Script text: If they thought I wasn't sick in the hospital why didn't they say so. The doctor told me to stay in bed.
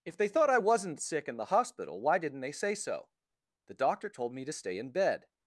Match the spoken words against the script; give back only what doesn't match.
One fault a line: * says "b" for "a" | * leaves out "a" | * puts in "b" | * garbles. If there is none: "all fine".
all fine